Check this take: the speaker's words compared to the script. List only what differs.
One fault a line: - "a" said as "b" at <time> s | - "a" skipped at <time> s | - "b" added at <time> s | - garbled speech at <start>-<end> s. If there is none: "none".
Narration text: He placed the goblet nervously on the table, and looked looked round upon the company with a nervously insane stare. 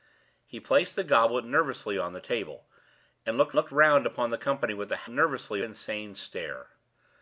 none